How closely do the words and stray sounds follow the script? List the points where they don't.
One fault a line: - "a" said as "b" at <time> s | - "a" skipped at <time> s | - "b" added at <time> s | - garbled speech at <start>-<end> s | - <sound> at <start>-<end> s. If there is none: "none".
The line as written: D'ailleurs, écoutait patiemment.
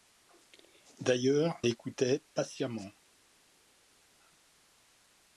none